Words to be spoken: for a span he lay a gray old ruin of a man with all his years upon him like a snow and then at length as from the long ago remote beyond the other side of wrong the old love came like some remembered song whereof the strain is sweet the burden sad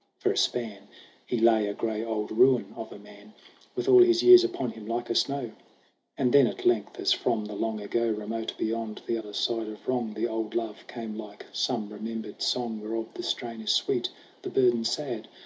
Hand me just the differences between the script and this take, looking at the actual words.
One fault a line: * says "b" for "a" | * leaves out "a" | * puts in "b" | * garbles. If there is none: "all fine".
all fine